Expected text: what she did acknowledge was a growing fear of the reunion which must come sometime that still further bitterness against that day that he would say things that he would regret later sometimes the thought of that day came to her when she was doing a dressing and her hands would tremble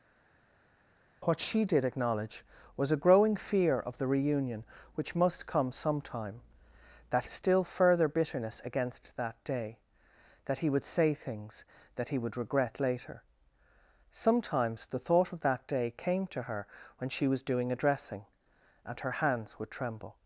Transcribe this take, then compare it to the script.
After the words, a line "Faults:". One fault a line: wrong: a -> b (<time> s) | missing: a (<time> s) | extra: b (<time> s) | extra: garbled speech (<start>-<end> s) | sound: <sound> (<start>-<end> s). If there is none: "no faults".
what she did acknowledge was a growing fear of the reunion which must come sometime that still further bitterness against that day that he would say things that he would regret later sometimes the thought of that day came to her when she was doing a dressing and her hands would tremble
Faults:
no faults